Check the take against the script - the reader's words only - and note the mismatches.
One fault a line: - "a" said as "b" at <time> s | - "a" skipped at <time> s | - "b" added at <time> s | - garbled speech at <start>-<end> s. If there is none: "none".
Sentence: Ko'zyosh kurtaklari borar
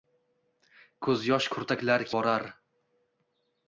none